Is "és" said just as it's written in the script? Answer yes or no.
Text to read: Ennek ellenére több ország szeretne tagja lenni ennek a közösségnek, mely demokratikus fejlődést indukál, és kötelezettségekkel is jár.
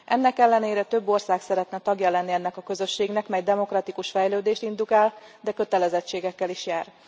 no